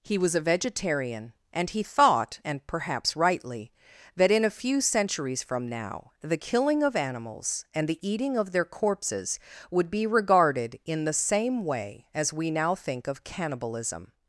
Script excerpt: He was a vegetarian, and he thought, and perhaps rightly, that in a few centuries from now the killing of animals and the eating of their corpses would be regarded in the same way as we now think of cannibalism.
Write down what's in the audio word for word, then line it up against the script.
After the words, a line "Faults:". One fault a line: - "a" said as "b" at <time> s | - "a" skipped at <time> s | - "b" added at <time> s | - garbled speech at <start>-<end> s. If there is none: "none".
He was a vegetarian, and he thought, and perhaps rightly, that in a few centuries from now the killing of animals and the eating of their corpses would be regarded in the same way as we now think of cannibalism.
Faults:
none